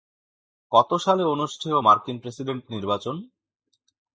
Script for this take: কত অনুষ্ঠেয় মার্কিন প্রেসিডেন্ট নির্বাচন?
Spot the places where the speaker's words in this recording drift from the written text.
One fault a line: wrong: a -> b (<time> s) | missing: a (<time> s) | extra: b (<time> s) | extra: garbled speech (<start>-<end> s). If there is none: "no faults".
extra: সালে (1.0 s)